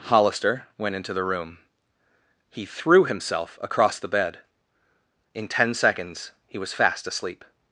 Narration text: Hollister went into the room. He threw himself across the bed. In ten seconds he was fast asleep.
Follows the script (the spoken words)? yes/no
yes